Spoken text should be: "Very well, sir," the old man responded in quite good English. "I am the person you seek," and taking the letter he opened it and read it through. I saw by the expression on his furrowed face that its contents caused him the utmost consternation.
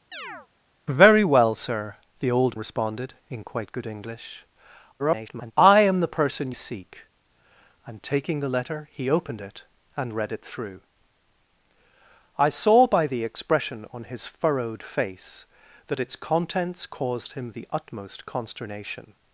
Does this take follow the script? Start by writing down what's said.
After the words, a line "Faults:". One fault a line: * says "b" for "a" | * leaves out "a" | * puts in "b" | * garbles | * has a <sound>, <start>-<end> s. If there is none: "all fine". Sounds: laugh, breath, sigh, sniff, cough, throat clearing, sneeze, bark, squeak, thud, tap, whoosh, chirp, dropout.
"Very well, sir," the old responded in quite good English. [garbled] "I am the person seek," and taking the letter he opened it and read it through. I saw by the expression on his furrowed face that its contents caused him the utmost consternation.
Faults:
* has a chirp, 0.1-0.5 s
* leaves out "man"
* garbles
* leaves out "you"